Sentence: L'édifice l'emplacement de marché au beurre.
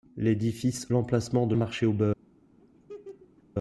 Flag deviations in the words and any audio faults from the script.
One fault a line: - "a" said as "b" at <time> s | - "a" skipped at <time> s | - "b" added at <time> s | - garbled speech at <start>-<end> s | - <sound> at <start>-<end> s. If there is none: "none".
- laugh at 2.6-3.4 s